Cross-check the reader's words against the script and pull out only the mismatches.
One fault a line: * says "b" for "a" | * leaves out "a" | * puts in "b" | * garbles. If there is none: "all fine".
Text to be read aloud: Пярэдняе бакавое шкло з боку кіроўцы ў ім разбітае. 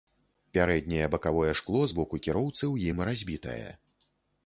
all fine